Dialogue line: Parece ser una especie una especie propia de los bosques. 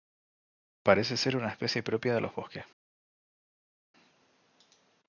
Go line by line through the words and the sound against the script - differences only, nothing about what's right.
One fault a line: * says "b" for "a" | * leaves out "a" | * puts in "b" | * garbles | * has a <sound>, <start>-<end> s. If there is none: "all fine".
* leaves out "una especie"